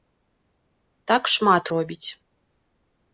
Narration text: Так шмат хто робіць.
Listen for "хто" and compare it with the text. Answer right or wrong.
wrong